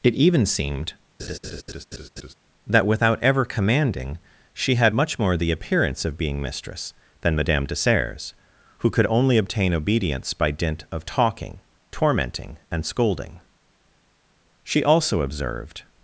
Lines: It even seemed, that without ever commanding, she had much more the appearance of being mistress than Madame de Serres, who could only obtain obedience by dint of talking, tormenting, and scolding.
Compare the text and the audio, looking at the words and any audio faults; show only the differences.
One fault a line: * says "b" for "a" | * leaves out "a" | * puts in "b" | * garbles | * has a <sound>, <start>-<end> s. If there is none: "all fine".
* has a laugh, 1.2-2.3 s
* puts in "She also observed"